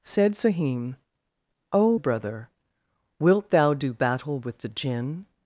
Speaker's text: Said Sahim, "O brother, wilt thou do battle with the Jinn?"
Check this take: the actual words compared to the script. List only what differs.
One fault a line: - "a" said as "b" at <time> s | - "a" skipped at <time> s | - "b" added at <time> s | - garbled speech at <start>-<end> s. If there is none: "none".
none